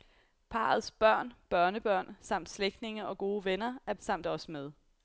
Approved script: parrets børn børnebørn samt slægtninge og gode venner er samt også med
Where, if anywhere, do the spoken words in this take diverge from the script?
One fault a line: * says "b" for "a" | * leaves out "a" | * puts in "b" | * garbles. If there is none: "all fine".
all fine